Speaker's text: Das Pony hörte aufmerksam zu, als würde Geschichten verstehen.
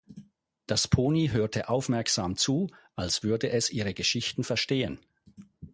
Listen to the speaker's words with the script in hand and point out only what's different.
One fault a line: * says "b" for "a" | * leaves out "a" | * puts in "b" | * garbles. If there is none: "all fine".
* puts in "es ihre"